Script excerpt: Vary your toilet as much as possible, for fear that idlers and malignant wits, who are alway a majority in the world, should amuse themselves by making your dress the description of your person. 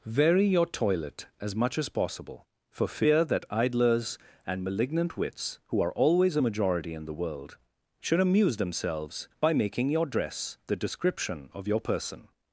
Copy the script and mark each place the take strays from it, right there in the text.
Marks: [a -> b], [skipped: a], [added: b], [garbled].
Vary your toilet as much as possible, for fear that idlers and malignant wits, who are [alway -> always] a majority in the world, should amuse themselves by making your dress the description of your person.